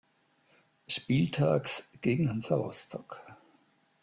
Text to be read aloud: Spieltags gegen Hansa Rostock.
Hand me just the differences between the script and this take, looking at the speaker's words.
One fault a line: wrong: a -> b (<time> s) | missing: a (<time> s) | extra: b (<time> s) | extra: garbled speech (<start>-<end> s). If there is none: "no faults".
no faults